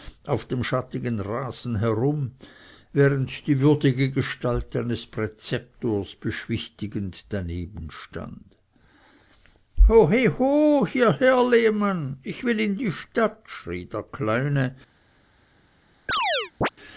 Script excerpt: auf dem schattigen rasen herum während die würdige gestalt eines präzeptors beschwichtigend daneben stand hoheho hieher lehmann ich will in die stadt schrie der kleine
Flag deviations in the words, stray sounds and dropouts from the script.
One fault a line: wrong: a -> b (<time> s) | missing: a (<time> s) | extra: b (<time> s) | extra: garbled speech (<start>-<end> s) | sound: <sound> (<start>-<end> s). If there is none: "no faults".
sound: chirp (16.1-16.7 s)